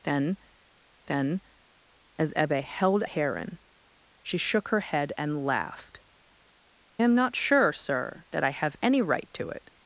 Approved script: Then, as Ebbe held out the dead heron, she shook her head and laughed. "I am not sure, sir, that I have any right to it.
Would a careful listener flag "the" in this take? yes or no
yes